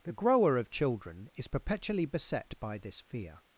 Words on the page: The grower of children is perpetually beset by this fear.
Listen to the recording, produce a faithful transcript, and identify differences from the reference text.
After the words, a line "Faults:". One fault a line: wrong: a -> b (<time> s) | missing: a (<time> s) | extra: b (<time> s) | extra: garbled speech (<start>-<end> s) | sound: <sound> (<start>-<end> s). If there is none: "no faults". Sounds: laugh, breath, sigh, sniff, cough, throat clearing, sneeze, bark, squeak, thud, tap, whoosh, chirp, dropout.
The grower of children is perpetually beset by this fear.
Faults:
no faults